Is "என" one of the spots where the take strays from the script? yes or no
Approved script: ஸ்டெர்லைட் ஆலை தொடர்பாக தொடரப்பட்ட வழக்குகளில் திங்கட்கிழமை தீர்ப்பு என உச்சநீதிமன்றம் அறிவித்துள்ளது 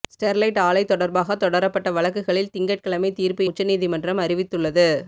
yes